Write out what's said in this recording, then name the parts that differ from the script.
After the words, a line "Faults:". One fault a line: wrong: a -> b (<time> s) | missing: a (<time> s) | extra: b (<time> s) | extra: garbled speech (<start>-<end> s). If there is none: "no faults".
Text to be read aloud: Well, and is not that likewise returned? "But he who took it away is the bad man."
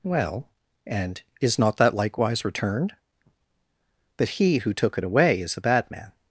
Well, and is not that likewise returned? "But he who took it away is the bad man."
Faults:
no faults